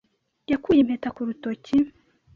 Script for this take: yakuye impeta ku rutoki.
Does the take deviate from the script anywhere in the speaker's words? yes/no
no